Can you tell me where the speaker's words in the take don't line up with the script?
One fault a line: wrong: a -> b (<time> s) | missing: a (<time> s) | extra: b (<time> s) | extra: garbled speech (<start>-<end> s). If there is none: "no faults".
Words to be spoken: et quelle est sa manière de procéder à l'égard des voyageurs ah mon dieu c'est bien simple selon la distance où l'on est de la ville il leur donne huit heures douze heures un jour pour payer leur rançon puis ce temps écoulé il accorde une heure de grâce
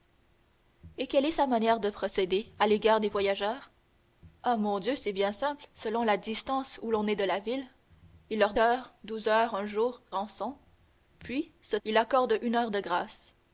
missing: donne huit (8.5 s)
missing: pour payer leur (10.0 s)
missing: temps écoulé (11.8 s)